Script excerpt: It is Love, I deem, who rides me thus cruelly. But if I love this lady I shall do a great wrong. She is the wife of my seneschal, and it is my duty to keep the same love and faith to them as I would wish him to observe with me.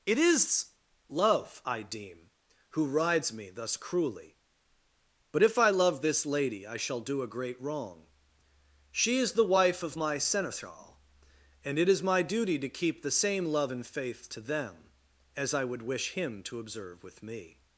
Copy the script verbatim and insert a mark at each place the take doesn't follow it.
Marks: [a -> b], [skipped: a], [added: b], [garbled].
It is Love, I deem, who rides me thus cruelly. But if I love this lady I shall do a great wrong. She is the wife of my seneschal, and it is my duty to keep the same love and faith to them as I would wish him to observe with me.